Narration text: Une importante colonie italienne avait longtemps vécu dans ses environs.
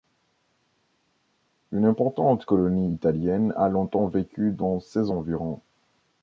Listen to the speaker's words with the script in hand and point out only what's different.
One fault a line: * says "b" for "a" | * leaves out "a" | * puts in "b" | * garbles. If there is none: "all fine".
* says "a" for "avait"